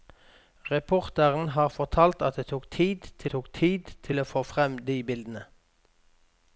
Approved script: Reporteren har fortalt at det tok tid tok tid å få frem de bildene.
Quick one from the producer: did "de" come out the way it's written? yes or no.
yes